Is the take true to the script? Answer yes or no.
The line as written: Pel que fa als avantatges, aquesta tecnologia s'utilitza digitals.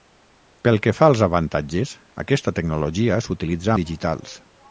yes